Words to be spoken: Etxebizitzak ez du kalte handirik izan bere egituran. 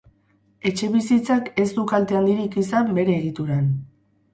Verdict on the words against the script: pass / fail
pass